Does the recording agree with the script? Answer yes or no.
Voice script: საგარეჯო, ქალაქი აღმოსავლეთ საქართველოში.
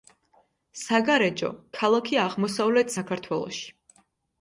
yes